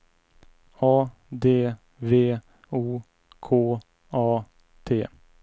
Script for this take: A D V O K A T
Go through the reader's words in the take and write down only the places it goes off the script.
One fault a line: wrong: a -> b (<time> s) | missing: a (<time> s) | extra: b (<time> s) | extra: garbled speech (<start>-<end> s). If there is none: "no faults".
no faults